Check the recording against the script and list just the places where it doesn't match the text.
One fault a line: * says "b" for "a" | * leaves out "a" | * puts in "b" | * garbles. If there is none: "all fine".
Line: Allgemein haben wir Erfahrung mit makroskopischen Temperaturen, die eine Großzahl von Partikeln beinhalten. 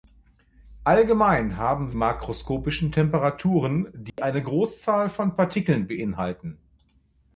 * leaves out "wir Erfahrung mit"